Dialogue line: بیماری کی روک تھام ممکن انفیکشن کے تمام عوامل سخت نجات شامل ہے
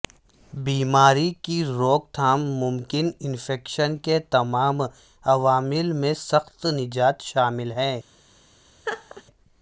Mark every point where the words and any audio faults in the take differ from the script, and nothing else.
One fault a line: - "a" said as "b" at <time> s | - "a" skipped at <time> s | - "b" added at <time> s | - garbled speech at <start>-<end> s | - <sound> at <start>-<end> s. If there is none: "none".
- "میں" added at 5.9 s
- laugh at 8.8-9.2 s